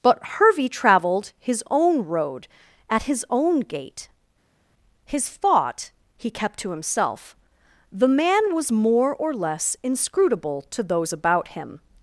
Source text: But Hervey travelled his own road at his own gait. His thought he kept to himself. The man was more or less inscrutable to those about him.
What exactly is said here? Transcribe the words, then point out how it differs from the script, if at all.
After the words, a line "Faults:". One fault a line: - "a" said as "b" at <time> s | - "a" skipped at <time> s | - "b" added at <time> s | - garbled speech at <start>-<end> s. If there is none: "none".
But Hervey travelled his own road at his own gait. His thought he kept to himself. The man was more or less inscrutable to those about him.
Faults:
none